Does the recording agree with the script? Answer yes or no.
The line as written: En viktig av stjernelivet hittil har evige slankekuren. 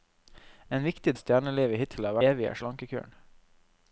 yes